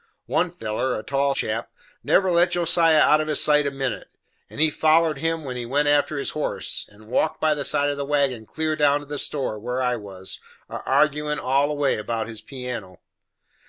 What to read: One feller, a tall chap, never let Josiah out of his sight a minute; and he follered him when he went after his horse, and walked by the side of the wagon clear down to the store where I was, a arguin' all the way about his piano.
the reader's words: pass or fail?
pass